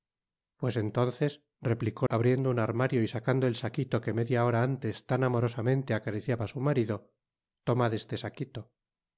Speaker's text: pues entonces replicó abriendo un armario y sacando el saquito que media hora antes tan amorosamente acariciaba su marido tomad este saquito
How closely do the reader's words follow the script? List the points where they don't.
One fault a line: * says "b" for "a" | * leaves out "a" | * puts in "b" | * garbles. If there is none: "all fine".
all fine